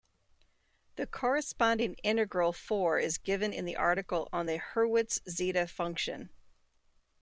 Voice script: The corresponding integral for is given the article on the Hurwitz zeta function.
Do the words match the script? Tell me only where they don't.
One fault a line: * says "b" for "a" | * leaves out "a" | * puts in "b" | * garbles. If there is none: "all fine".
* puts in "in"